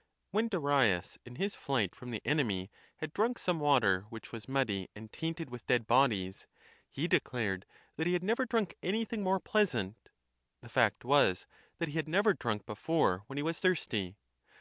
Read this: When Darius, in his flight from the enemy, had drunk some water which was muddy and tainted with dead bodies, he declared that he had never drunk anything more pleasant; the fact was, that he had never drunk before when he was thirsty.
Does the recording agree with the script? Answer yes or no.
yes